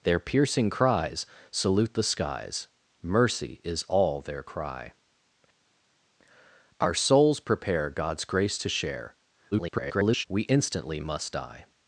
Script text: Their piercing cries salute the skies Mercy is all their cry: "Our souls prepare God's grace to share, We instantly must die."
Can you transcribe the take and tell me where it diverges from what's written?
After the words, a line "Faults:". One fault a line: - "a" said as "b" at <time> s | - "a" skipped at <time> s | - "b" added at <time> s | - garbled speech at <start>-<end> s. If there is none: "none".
Their piercing cries salute the skies Mercy is all their cry: "Our souls prepare God's grace to share, [garbled] We instantly must die."
Faults:
- garbled speech at 9.5-10.2 s